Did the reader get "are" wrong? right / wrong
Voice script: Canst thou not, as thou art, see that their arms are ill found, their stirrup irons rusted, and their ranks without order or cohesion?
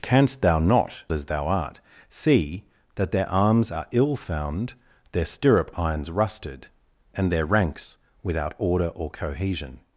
right